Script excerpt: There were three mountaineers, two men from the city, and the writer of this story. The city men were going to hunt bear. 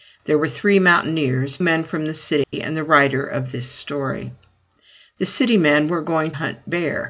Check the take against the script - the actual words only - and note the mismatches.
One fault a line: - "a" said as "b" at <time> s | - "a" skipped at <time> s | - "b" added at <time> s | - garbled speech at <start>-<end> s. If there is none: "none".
- "two" skipped at 1.6 s
- "to" skipped at 6.3 s